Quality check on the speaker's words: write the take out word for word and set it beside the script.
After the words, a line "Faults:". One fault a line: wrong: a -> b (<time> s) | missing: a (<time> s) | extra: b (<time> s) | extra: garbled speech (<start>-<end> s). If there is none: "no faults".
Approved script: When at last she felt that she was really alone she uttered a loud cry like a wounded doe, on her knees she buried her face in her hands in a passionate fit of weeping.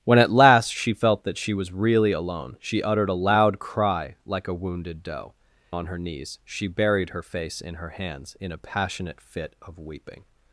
When at last she felt that she was really alone she uttered a loud cry like a wounded doe, on her knees she buried her face in her hands in a passionate fit of weeping.
Faults:
no faults